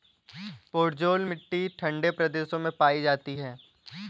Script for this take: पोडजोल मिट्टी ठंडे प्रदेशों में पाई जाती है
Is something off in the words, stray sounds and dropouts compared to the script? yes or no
no